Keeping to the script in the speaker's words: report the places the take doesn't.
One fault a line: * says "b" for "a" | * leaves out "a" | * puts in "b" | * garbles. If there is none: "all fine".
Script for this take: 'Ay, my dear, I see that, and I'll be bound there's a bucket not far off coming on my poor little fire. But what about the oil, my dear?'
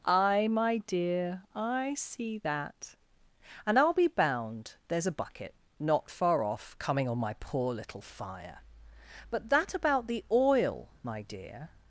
* says "that" for "what"